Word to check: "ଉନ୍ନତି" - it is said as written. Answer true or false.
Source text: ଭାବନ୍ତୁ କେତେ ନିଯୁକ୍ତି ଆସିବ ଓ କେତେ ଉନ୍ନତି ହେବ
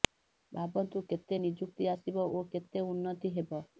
true